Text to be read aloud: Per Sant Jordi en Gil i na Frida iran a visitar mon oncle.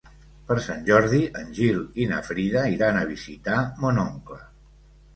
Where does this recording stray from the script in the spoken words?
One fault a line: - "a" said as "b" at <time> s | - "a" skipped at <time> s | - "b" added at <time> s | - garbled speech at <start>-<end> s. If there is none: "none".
none